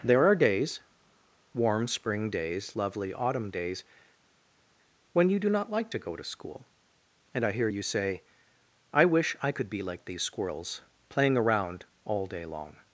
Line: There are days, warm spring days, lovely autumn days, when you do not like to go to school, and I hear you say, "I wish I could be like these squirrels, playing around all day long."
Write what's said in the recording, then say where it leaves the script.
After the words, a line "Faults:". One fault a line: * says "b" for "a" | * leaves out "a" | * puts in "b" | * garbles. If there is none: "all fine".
There are days, warm spring days, lovely autumn days, when you do not like to go to school, and I hear you say, "I wish I could be like these squirrels, playing around all day long."
Faults:
all fine